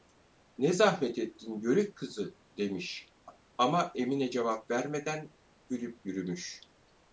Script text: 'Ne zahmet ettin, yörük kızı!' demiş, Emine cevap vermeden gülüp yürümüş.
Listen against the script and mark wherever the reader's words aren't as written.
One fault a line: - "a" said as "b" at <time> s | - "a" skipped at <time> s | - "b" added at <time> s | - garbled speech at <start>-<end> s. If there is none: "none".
- "ama" added at 3.6 s